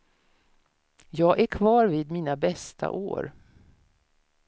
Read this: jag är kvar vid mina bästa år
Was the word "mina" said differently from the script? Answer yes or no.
no